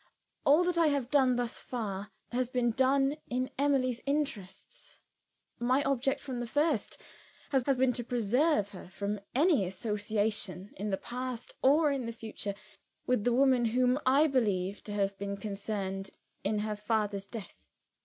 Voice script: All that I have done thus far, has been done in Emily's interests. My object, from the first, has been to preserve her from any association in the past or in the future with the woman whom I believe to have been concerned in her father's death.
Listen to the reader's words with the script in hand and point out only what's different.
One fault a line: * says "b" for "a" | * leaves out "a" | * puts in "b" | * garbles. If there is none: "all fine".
* puts in "has"